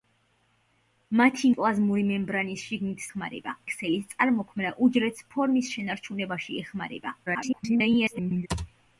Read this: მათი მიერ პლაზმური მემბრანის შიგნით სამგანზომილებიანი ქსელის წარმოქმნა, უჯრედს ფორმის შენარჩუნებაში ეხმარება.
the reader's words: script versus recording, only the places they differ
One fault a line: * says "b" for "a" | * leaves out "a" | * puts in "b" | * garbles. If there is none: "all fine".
* leaves out "მიერ"
* says "ეხმარება" for "სამგანზომილებიანი"
* garbles